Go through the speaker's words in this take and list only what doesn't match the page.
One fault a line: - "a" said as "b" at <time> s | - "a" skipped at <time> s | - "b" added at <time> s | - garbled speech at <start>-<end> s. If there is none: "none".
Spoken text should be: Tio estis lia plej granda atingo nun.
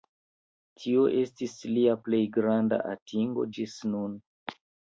- "ĝis" added at 3.6 s